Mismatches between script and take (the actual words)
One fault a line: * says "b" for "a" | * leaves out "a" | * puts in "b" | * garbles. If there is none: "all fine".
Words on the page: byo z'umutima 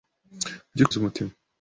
all fine